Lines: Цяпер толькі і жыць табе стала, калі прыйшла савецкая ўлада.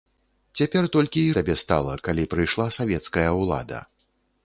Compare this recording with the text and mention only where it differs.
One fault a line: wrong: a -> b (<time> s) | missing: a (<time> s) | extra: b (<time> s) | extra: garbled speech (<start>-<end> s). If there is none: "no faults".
missing: жыць (1.3 s)